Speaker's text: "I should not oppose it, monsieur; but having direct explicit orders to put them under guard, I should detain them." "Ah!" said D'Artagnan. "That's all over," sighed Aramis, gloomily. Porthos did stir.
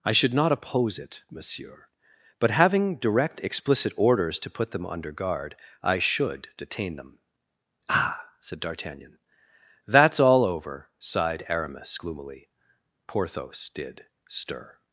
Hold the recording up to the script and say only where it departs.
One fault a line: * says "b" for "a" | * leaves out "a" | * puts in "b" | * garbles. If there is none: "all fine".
all fine